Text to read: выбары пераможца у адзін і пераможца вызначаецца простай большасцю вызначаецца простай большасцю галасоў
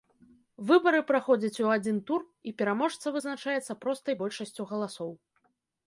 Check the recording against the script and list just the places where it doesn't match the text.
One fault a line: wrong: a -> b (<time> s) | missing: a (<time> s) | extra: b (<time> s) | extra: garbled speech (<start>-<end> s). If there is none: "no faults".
wrong: пераможца -> праходзяць (1.1 s)
extra: тур (2.1 s)
missing: вызначаецца простай большасцю (4.6 s)